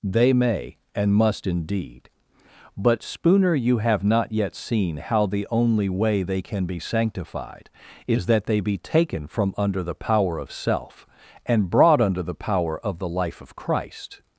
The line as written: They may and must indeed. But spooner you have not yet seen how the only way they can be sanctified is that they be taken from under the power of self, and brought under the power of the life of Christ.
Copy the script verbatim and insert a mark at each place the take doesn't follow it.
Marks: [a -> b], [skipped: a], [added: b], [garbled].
They may and must indeed. But spooner you have not yet seen how the only way they can be sanctified is that they be taken from under the power of self, and brought under the power of the life of Christ.